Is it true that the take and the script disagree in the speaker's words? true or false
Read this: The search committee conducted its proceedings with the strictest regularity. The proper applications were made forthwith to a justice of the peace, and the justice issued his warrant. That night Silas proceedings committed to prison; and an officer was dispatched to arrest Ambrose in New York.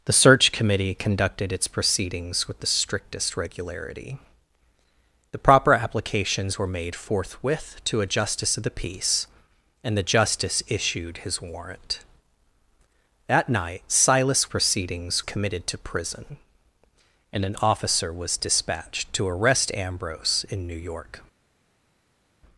false